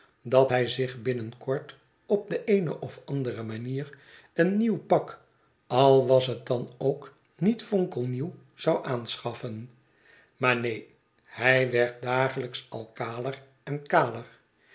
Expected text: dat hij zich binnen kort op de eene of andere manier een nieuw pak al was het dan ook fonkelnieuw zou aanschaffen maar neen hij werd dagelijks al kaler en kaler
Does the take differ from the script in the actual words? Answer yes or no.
yes